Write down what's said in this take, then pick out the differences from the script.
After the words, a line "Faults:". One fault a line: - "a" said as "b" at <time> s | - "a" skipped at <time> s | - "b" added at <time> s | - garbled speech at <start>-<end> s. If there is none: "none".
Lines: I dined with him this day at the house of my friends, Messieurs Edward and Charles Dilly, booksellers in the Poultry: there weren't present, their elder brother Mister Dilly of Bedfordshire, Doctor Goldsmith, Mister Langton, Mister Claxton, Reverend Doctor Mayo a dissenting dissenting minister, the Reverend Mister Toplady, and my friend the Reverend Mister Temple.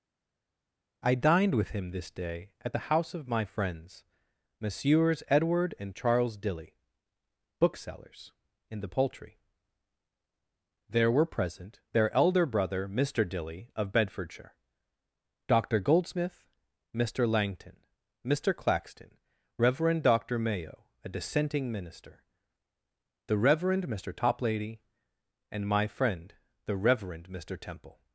I dined with him this day at the house of my friends, Messieurs Edward and Charles Dilly, booksellers in the Poultry: there were present, their elder brother Mister Dilly of Bedfordshire, Doctor Goldsmith, Mister Langton, Mister Claxton, Reverend Doctor Mayo a dissenting minister, the Reverend Mister Toplady, and my friend the Reverend Mister Temple.
Faults:
- "weren't" said as "were" at 11.1 s
- "dissenting" skipped at 21.7 s